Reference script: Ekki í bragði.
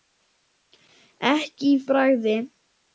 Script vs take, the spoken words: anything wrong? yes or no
no